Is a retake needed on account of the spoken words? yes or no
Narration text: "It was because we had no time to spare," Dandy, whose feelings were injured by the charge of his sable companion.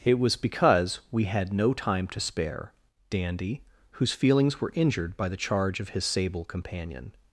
no